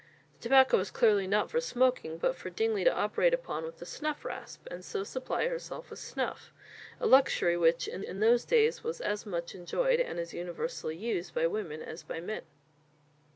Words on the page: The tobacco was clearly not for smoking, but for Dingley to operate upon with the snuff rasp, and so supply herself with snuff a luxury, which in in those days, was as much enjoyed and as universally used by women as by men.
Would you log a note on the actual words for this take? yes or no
no